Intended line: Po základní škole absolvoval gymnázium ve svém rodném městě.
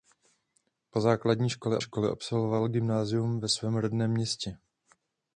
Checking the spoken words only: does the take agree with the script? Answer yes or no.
no